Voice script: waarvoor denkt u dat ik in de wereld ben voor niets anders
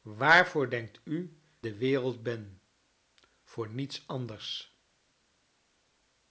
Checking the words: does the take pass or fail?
fail